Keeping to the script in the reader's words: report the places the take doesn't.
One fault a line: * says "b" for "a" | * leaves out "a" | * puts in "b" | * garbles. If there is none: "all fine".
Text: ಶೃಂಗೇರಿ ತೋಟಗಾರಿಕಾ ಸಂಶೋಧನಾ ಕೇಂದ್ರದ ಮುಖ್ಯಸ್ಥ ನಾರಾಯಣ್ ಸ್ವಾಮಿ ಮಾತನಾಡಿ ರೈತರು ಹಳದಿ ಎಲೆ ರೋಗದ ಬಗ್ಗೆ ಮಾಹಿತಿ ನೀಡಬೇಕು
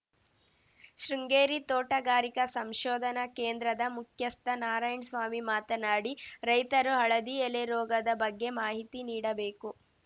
all fine